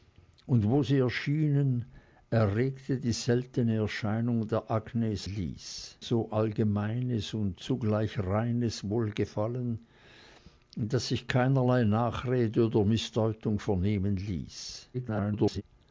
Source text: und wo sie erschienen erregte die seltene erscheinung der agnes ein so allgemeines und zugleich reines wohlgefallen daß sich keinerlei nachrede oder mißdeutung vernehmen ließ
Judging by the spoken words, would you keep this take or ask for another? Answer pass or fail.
fail